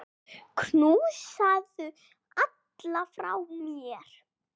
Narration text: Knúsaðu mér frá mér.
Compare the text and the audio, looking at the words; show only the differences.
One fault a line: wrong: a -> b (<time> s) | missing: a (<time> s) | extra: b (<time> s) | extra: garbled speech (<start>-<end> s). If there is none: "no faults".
wrong: mér -> alla (2.5 s)